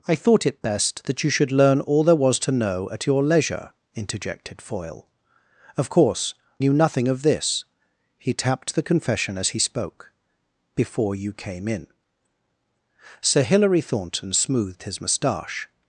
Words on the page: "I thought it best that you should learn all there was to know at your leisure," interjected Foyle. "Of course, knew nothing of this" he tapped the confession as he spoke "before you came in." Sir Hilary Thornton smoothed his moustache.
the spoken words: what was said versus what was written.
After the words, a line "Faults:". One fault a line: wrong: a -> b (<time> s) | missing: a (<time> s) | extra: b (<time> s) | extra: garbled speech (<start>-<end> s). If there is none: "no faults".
"I thought it best that you should learn all there was to know at your leisure," interjected Foyle. "Of course, knew nothing of this" he tapped the confession as he spoke "before you came in." Sir Hilary Thornton smoothed his moustache.
Faults:
no faults